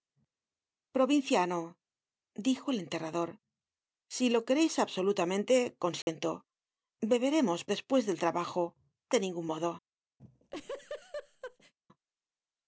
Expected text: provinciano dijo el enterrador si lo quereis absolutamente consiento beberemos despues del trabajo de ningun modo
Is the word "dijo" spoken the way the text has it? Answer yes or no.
yes